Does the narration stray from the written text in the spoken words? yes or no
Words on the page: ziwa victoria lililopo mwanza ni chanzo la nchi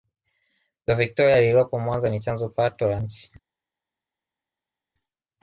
yes